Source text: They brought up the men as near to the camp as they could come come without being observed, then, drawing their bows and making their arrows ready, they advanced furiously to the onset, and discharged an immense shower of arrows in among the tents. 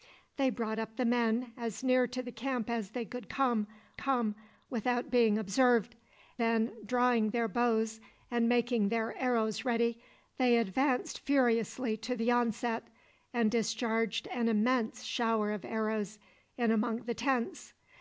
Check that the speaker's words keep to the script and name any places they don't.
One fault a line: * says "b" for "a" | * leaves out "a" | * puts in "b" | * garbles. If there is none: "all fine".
all fine